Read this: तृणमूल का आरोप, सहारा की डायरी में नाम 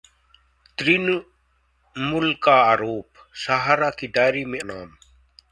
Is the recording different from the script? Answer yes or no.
no